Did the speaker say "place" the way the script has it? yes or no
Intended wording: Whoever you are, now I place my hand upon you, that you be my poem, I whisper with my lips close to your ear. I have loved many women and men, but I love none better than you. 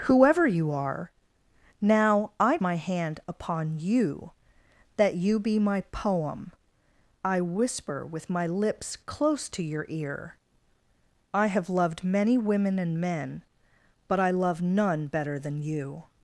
no